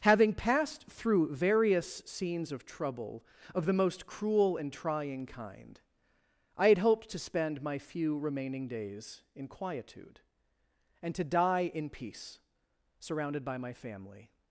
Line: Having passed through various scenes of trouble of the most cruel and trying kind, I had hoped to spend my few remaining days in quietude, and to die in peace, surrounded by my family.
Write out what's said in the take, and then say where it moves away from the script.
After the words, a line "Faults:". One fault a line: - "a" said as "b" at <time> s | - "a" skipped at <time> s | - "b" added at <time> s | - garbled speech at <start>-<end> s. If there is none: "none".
Having passed through various scenes of trouble of the most cruel and trying kind, I had hoped to spend my few remaining days in quietude, and to die in peace, surrounded by my family.
Faults:
none